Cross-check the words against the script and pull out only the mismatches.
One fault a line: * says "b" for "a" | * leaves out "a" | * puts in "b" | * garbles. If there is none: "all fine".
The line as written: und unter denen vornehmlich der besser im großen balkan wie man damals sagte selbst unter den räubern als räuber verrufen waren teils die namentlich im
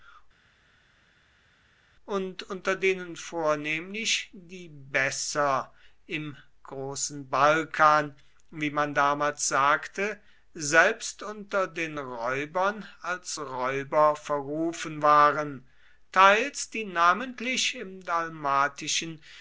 * says "die" for "der"